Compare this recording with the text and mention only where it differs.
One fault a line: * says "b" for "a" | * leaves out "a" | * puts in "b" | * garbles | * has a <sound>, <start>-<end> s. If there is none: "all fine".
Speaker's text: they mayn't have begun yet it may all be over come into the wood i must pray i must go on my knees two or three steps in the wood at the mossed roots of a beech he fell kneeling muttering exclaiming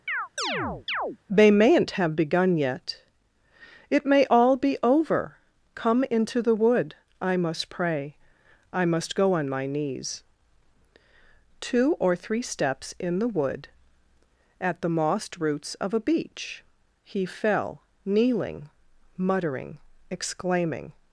* has a chirp, 0.1-1.2 s